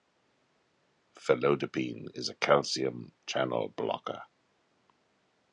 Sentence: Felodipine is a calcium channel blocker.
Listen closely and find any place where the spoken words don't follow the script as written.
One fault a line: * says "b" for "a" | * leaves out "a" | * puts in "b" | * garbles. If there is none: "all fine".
all fine